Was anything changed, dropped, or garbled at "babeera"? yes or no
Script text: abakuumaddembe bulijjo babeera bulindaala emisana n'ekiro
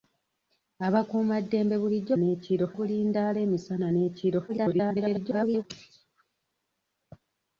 yes